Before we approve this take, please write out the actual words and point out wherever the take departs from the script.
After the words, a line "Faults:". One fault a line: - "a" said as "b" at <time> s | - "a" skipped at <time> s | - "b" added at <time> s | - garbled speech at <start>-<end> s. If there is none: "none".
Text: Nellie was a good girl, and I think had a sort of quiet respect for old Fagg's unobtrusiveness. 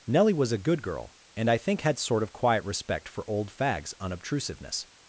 Nellie was a good girl, and I think had sort of quiet respect for old Fagg's unobtrusiveness.
Faults:
- "a" skipped at 2.0 s